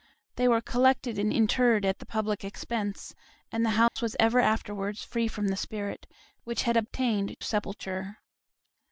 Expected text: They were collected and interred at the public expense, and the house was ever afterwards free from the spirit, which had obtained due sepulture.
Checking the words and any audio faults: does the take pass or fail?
fail